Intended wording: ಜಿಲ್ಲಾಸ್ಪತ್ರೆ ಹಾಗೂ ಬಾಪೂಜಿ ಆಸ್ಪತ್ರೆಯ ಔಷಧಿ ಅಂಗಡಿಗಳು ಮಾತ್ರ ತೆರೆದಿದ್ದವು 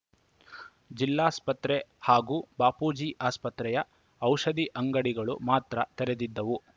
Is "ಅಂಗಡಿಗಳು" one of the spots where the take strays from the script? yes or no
no